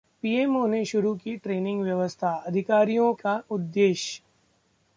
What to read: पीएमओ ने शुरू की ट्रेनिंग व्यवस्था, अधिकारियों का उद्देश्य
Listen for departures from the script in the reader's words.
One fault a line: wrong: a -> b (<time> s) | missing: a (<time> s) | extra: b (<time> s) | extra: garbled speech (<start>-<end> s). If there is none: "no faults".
no faults